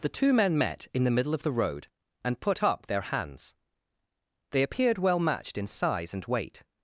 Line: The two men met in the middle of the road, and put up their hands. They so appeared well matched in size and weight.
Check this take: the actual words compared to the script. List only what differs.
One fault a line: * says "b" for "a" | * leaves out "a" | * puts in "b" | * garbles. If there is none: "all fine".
* leaves out "so"